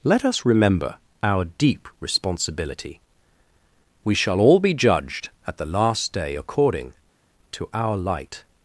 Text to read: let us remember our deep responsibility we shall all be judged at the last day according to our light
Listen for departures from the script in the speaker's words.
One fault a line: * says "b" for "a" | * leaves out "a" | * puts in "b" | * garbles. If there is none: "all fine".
all fine